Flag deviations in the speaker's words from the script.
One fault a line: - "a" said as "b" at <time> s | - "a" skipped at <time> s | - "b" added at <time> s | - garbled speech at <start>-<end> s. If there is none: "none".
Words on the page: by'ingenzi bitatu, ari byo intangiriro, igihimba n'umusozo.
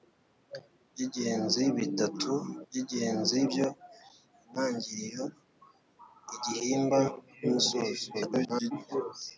- "ari" said as "by'ingenzi" at 2.7 s
- garbled speech at 8.1-8.7 s